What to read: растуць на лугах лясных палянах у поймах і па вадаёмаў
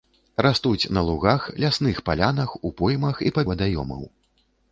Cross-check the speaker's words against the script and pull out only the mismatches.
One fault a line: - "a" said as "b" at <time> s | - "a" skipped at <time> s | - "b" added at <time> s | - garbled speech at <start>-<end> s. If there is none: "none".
none